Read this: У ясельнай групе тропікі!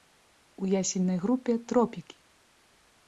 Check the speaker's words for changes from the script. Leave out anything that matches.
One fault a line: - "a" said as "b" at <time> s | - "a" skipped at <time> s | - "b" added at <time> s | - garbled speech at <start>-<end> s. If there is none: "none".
none